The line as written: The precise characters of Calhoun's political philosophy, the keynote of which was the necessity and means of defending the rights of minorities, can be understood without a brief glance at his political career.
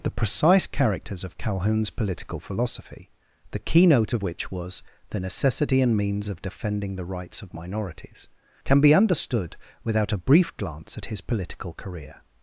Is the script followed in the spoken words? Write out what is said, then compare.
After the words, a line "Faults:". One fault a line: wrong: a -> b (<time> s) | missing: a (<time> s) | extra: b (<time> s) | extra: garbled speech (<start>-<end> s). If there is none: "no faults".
The precise characters of Calhoun's political philosophy, the keynote of which was the necessity and means of defending the rights of minorities, can be understood without a brief glance at his political career.
Faults:
no faults